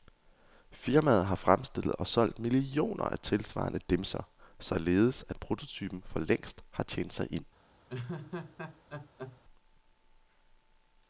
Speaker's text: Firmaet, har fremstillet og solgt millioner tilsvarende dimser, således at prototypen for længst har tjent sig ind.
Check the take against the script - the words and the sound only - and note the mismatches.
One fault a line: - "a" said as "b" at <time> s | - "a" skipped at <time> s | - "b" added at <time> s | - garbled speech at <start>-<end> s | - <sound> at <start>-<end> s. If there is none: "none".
- "af" added at 3.0 s
- laugh at 7.9-9.4 s